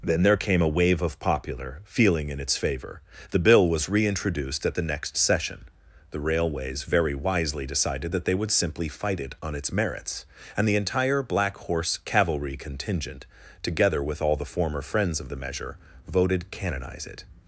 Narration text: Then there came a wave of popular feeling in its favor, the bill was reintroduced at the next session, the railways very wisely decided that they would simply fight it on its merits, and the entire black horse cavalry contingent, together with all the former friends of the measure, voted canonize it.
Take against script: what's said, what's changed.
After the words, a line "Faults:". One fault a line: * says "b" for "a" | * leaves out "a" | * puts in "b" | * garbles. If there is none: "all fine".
Then there came a wave of popular feeling in its favor, the bill was reintroduced at the next session, the railways very wisely decided that they would simply fight it on its merits, and the entire black horse cavalry contingent, together with all the former friends of the measure, voted canonize it.
Faults:
all fine